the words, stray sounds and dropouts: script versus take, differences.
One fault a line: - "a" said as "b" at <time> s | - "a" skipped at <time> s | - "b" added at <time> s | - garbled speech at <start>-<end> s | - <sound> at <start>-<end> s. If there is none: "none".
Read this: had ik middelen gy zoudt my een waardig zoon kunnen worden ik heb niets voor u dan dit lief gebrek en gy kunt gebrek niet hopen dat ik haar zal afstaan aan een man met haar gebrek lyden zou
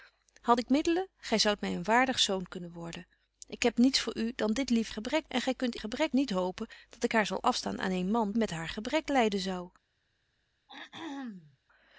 - throat clearing at 10.7-11.6 s